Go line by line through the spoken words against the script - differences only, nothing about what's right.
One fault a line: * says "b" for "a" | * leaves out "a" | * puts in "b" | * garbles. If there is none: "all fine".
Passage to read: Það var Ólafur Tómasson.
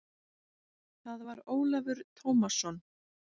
all fine